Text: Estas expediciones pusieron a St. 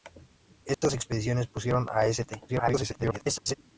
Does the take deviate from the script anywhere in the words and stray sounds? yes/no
yes